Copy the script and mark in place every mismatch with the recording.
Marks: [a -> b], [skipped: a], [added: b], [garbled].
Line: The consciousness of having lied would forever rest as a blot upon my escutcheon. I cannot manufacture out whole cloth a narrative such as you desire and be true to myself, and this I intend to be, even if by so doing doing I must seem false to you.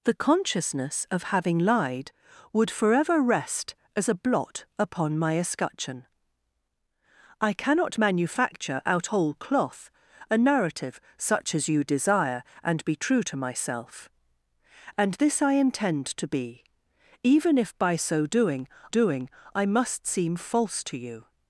The consciousness of having lied would forever rest as a blot upon my escutcheon. I cannot manufacture out whole cloth a narrative such as you desire and be true to myself, and this I intend to be, even if by so doing doing I must seem false to you.